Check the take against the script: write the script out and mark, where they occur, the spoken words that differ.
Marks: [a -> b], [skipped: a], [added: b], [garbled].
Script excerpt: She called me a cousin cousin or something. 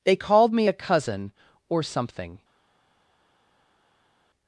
[She -> They] called me a cousin [skipped: cousin] or something.